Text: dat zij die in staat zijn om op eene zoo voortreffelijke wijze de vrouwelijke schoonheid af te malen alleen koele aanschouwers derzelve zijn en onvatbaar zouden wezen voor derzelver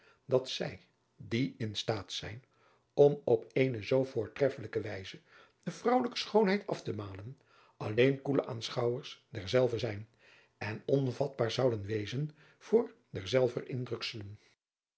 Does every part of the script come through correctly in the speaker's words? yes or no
yes